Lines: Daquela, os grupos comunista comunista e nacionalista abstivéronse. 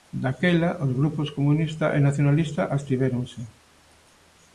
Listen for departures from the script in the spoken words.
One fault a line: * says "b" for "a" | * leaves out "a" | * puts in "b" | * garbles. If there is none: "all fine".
* leaves out "comunista"